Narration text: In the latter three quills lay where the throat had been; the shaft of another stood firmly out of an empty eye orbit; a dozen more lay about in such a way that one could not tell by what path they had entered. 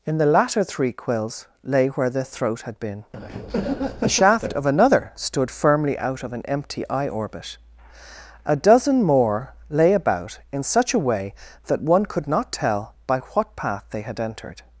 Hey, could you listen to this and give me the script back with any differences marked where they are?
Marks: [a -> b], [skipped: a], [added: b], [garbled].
In the latter three quills lay where the throat had been; the shaft of another stood firmly out of an empty eye orbit; a dozen more lay about in such a way that one could not tell by what path they had entered.